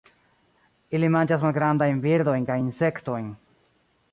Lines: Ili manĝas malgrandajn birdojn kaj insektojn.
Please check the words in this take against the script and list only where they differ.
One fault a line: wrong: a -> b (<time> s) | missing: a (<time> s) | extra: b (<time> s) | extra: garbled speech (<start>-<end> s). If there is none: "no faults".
no faults